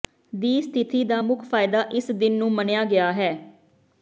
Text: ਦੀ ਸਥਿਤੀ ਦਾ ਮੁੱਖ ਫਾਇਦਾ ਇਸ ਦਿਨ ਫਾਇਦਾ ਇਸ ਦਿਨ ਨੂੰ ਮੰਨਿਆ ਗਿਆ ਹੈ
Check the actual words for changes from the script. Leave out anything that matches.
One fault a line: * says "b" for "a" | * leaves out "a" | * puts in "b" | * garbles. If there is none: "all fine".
* leaves out "ਫਾਇਦਾ ਇਸ ਦਿਨ"